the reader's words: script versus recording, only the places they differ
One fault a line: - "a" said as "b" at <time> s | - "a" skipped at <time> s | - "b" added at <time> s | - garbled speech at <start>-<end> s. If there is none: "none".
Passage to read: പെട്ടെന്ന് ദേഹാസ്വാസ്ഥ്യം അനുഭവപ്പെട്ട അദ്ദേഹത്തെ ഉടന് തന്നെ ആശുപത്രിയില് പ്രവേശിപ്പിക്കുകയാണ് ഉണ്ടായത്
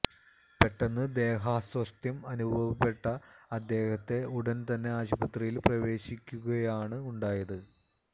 none